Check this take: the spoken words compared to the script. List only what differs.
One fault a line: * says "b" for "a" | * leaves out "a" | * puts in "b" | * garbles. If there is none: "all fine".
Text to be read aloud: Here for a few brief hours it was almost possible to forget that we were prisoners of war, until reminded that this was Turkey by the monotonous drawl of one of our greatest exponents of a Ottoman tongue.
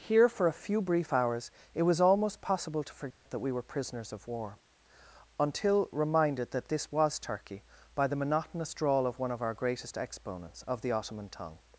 * says "the" for "a"